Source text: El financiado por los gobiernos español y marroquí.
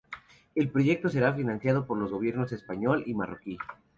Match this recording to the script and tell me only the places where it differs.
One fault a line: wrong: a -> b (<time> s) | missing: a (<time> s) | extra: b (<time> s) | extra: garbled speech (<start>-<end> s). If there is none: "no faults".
extra: proyecto será (0.7 s)